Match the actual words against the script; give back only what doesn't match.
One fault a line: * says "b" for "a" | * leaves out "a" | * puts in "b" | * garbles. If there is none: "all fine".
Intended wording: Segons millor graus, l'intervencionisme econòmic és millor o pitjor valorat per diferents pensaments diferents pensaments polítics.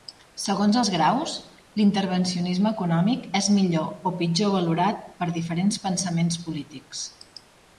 * says "els" for "millor"
* leaves out "diferents pensaments"